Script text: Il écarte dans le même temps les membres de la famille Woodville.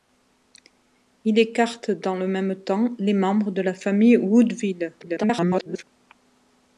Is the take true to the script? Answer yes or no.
no